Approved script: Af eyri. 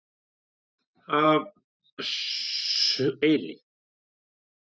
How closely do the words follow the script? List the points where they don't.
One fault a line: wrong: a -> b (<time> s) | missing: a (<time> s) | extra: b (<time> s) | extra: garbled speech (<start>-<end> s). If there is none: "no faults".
no faults